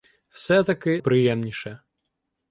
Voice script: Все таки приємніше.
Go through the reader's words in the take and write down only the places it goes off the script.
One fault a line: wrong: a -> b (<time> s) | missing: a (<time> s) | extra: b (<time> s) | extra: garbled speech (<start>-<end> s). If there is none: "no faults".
no faults